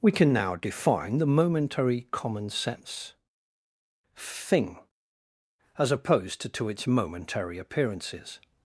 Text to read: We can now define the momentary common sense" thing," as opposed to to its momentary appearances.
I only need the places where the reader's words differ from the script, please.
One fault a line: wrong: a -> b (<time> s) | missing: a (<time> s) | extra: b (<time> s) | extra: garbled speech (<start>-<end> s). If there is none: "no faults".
no faults